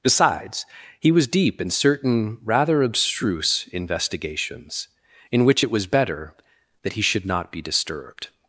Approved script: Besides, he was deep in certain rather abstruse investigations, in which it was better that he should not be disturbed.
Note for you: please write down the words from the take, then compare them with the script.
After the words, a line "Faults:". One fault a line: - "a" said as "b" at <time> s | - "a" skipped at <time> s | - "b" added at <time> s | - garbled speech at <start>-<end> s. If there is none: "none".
Besides, he was deep in certain rather abstruse investigations, in which it was better that he should not be disturbed.
Faults:
none